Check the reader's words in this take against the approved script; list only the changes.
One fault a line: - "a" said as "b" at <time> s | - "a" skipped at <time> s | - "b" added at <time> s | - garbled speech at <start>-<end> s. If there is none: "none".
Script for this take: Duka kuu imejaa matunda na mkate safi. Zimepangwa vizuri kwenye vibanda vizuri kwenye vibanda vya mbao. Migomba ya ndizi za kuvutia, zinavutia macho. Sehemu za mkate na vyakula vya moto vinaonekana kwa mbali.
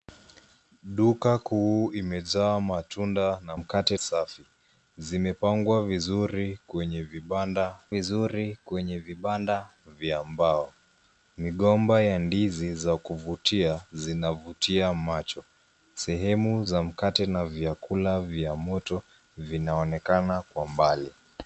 none